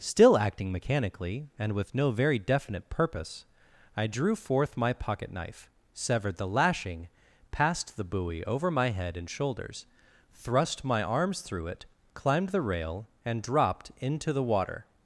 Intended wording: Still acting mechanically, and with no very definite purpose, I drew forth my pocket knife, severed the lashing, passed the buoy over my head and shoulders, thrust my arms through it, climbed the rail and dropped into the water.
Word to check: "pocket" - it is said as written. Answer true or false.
true